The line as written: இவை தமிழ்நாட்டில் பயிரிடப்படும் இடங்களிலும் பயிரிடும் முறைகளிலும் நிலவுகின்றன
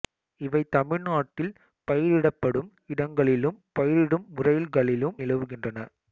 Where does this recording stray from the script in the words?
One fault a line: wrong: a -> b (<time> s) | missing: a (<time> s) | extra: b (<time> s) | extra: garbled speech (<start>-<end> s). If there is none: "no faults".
no faults